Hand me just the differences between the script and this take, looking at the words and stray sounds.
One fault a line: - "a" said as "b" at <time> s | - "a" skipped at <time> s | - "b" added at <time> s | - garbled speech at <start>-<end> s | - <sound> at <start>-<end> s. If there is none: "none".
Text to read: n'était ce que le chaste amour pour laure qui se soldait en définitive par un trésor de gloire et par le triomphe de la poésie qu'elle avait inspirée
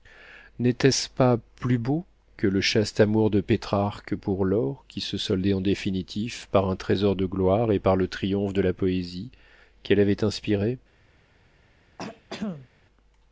- "pas plus beau" added at 1.1 s
- "de pétrarque" added at 3.3 s
- throat clearing at 12.0-12.7 s